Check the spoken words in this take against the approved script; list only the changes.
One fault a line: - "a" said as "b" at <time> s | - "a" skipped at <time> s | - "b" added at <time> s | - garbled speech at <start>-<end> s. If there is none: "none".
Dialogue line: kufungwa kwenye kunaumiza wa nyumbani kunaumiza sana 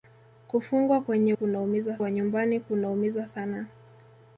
none